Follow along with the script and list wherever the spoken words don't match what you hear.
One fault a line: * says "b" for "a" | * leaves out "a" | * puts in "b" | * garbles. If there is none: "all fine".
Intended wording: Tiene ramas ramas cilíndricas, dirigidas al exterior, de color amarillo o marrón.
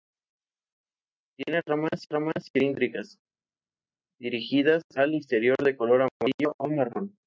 all fine